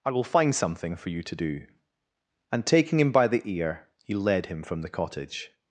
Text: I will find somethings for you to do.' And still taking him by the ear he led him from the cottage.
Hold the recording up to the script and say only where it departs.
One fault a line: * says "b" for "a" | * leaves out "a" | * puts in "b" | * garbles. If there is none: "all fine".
* says "something" for "somethings"
* leaves out "still"